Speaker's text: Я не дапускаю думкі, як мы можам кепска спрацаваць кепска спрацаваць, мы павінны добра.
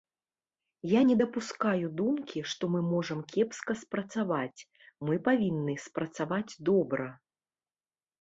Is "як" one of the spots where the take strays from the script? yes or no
yes